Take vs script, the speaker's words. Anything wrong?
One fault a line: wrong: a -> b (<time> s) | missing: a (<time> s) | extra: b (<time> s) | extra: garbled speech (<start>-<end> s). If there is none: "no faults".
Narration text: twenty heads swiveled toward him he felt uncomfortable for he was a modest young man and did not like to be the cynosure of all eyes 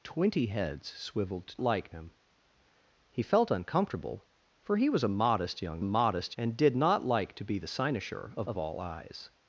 wrong: toward -> like (1.6 s)
wrong: man -> modest (5.8 s)
extra: of (8.5 s)